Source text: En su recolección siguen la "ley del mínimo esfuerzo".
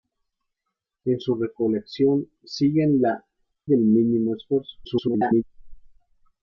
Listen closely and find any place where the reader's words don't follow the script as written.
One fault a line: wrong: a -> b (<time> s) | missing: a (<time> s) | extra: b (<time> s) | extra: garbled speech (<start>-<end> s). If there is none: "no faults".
missing: ley (3.2 s)
extra: garbled speech (4.8-5.4 s)